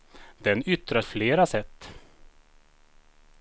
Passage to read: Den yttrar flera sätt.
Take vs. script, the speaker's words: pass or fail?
pass